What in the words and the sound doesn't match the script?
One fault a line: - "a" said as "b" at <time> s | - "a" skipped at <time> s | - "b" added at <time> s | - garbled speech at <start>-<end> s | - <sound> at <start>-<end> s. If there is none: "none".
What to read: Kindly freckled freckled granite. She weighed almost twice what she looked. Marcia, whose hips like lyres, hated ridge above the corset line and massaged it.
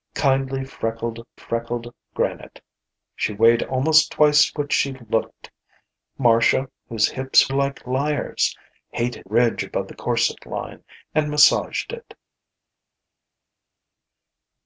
none